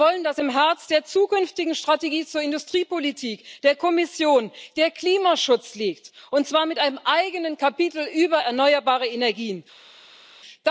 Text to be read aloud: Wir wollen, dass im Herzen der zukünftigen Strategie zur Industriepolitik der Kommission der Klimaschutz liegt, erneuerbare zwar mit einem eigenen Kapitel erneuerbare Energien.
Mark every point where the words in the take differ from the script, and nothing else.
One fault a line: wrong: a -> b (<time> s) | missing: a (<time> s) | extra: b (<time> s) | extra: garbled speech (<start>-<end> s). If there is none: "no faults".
wrong: erneuerbare -> und (6.3 s)
extra: über (8.1 s)